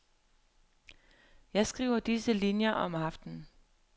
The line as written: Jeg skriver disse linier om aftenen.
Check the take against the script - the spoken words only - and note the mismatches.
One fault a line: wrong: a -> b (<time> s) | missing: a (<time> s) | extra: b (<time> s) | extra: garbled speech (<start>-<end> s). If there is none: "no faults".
no faults